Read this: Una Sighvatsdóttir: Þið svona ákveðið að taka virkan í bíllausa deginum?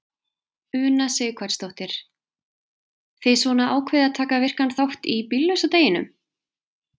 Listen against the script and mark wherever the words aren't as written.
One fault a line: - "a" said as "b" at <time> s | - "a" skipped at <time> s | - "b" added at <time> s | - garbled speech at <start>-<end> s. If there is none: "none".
- "þátt" added at 4.8 s